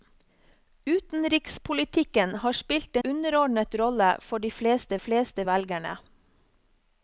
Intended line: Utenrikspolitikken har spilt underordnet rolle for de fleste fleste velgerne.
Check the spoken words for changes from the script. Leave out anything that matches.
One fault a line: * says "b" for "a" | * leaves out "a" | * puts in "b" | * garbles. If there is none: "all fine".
all fine